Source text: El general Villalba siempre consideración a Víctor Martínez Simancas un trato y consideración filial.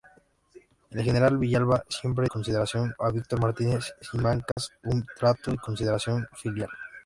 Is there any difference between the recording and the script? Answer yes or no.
no